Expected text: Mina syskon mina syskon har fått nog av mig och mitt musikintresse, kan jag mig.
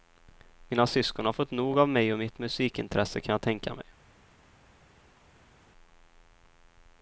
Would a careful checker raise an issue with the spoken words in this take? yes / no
yes